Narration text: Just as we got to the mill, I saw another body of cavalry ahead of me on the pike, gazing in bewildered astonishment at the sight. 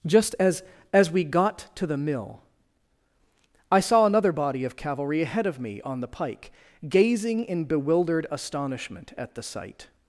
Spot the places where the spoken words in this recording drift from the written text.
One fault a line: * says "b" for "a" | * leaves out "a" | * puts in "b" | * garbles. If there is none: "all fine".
* puts in "as"